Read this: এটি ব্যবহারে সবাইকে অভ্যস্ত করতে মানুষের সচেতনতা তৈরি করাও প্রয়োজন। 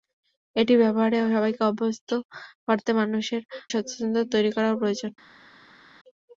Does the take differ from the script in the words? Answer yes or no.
no